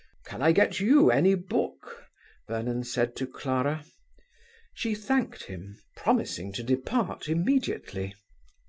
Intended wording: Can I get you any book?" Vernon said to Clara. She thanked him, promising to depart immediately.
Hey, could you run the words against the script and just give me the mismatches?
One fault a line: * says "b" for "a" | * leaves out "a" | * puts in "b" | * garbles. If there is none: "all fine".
all fine